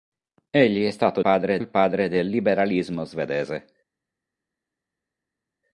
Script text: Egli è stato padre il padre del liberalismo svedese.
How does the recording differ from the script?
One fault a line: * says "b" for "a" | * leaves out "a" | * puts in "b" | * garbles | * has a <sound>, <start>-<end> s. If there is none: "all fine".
all fine